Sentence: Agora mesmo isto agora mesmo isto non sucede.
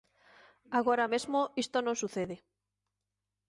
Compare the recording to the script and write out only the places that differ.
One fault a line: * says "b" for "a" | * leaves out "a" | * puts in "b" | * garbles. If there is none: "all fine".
* leaves out "agora mesmo isto"